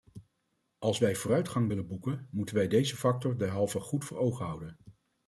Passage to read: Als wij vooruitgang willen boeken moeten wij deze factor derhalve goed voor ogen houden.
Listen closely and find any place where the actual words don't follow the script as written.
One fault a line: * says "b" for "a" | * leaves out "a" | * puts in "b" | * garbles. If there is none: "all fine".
all fine